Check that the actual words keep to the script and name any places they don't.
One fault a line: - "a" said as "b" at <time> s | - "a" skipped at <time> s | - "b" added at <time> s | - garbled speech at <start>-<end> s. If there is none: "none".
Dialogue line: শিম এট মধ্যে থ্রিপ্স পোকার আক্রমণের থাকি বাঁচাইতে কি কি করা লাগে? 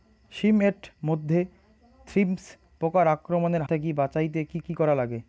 none